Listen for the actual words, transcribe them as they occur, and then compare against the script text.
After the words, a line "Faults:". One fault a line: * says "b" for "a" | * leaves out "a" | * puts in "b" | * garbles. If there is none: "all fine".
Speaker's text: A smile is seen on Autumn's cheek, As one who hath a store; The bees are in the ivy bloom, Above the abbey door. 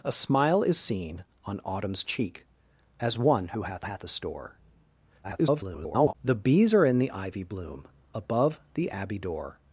A smile is seen on Autumn's cheek, As one who hath hath a store; [garbled] The bees are in the ivy bloom, Above the abbey door.
Faults:
* puts in "hath"
* garbles